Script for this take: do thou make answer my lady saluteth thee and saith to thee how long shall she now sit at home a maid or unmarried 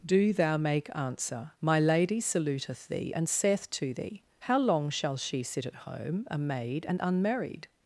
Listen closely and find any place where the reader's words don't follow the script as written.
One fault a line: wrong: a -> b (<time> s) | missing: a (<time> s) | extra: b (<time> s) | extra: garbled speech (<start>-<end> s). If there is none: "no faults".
missing: now (5.4 s)
wrong: or -> and (6.9 s)